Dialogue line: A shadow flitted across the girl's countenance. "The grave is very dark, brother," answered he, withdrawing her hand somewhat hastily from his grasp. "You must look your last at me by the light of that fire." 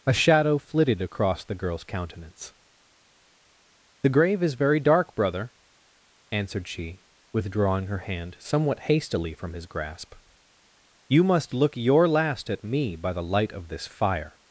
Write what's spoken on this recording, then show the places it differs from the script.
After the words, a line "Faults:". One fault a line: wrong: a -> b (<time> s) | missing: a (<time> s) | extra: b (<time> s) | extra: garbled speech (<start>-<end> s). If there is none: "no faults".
A shadow flitted across the girl's countenance. "The grave is very dark, brother," answered she, withdrawing her hand somewhat hastily from his grasp. "You must look your last at me by the light of this fire."
Faults:
wrong: he -> she (6.7 s)
wrong: that -> this (13.7 s)